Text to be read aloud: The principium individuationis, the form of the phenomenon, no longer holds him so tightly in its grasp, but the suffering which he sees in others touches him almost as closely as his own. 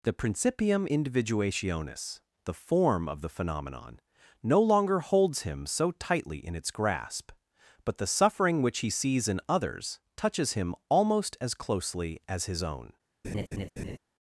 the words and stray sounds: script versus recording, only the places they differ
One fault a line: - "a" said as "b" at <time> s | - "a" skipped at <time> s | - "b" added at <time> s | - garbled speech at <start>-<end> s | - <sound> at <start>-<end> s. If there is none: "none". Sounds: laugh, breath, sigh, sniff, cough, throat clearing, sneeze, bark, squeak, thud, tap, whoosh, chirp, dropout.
- laugh at 13.2-14.0 s